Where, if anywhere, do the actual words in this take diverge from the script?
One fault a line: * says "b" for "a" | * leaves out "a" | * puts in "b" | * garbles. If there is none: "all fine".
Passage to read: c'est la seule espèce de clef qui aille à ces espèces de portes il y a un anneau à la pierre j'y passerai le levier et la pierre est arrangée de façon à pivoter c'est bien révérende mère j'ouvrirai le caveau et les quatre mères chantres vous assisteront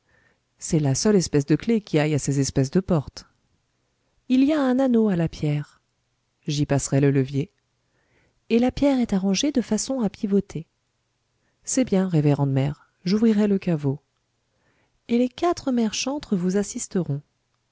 all fine